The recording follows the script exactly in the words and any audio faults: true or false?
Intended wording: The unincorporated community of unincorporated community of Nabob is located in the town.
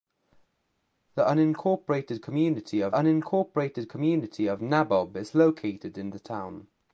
true